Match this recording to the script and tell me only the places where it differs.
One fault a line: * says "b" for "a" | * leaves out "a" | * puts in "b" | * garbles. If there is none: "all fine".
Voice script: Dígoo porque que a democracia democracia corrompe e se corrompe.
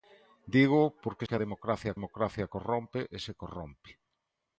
all fine